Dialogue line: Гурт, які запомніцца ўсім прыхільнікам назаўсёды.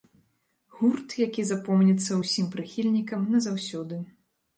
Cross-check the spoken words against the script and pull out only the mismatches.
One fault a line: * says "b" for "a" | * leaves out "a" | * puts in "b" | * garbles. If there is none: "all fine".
all fine